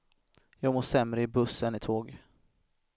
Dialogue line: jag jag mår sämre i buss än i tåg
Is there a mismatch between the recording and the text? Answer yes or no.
yes